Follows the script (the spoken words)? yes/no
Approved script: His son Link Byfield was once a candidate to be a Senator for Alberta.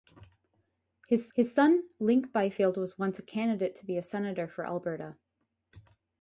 no